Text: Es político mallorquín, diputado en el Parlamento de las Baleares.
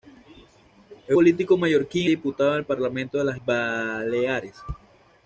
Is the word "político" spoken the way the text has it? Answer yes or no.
yes